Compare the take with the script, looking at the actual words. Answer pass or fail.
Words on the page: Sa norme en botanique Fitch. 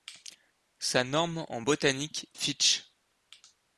pass